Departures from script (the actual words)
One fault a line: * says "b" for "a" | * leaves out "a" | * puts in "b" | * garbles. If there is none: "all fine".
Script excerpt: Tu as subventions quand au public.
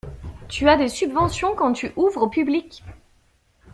* puts in "des"
* puts in "tu ouvres"